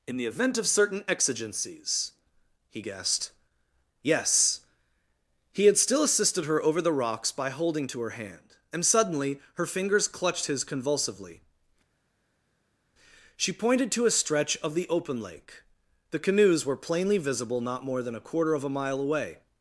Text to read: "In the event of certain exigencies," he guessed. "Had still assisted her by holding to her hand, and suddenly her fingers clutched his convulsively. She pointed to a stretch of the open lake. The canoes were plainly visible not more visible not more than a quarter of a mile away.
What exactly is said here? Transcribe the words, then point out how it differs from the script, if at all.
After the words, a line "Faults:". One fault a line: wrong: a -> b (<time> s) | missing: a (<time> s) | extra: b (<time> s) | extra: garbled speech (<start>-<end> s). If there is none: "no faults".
"In the event of certain exigencies," he guessed. "Yes." He had still assisted her over the rocks by holding to her hand, and suddenly her fingers clutched his convulsively. She pointed to a stretch of the open lake. The canoes were plainly visible not more than a quarter of a mile away.
Faults:
extra: Yes He (4.0 s)
extra: over the rocks (6.6 s)
missing: visible not more (18.0 s)